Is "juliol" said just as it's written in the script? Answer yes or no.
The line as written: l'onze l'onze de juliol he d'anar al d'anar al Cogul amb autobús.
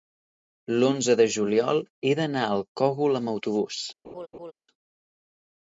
yes